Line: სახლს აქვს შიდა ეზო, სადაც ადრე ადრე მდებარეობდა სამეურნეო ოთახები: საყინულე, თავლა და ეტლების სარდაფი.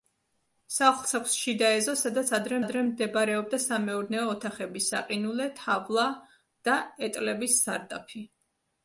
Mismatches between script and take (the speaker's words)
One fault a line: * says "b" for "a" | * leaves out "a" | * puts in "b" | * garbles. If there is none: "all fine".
all fine